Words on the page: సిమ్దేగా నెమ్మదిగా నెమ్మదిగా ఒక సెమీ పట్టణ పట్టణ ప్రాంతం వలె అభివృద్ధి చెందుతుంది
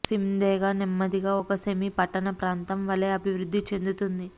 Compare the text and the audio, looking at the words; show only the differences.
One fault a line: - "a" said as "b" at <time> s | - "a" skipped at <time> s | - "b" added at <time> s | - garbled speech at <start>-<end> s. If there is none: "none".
- "నెమ్మదిగా" skipped at 1.3 s
- "పట్టణ" skipped at 2.3 s